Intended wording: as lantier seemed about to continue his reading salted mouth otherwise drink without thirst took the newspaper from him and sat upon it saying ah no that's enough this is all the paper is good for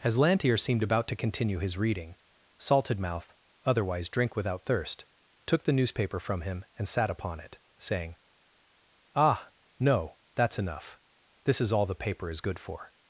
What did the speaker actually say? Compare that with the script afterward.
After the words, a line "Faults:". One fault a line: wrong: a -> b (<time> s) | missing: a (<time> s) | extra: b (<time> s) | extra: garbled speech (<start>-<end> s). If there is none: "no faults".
as lantier seemed about to continue his reading salted mouth otherwise drink without thirst took the newspaper from him and sat upon it saying ah no that's enough this is all the paper is good for
Faults:
no faults